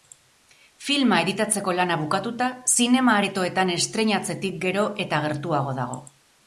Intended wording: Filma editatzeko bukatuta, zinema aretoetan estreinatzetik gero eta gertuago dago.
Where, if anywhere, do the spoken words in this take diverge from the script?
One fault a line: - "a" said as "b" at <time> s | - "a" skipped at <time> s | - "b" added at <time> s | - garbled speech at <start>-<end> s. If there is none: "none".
- "lana" added at 1.8 s